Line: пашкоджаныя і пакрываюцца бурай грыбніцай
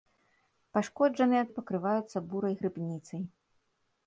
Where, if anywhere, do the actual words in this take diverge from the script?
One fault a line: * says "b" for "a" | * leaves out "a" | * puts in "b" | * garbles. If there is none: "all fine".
all fine